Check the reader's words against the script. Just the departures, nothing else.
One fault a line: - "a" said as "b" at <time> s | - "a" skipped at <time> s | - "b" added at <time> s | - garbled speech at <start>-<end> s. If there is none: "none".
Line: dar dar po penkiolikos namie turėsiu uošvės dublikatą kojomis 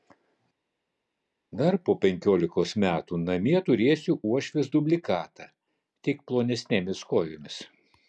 - "dar" skipped at 1.8 s
- "metų" added at 2.8 s
- "tik plonesnėmis" added at 6.1 s